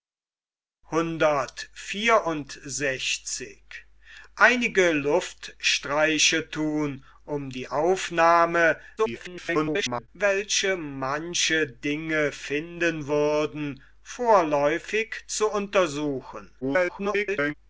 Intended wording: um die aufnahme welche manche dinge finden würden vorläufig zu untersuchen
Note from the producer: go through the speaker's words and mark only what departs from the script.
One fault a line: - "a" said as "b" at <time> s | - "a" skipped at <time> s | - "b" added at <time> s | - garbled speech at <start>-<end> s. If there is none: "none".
- garbled speech at 9.0-10.1 s
- garbled speech at 16.6-17.5 s